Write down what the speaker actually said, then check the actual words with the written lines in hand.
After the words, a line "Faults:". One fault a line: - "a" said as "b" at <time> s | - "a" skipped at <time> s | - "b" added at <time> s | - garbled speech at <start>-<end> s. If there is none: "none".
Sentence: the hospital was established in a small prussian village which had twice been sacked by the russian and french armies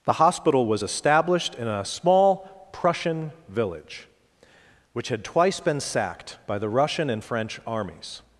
the hospital was established in a small prussian village which had twice been sacked by the russian and french armies
Faults:
none